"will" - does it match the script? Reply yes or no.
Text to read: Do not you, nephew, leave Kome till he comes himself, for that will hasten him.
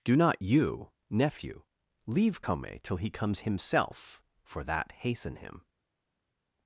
no